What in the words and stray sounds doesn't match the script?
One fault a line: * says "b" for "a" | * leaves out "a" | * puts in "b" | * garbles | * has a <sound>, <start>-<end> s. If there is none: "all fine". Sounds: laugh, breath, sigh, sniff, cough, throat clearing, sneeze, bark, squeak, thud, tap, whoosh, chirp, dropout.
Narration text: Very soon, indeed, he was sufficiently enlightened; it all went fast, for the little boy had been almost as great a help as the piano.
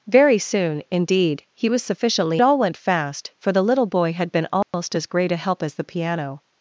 * leaves out "enlightened it"
* has a dropout, 4.6-4.7 s